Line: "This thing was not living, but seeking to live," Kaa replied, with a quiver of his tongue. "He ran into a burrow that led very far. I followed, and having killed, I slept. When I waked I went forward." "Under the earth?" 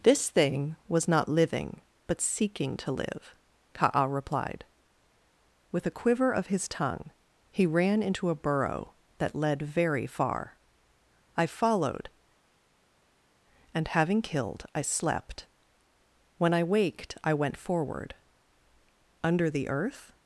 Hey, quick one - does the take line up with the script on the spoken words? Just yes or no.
yes